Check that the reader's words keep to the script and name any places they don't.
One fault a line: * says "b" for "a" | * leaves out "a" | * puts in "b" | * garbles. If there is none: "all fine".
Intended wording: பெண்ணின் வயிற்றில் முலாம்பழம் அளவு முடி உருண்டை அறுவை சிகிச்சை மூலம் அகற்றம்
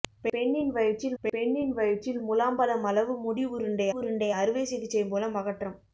* puts in "பெண்ணின் வயிற்றில்"
* puts in "உருண்டை"